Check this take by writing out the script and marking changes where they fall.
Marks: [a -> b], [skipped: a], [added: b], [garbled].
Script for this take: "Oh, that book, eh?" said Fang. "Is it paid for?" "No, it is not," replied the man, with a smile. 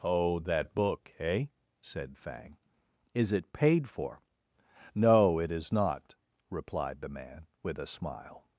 "Oh, that book, eh?" said Fang. "Is it paid for?" "No, it is not," replied the man, with a smile.